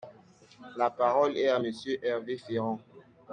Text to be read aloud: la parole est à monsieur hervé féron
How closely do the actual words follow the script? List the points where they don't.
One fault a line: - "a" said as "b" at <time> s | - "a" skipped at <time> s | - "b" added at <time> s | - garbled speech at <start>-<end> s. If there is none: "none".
none